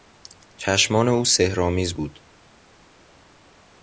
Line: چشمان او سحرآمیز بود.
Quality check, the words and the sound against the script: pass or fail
pass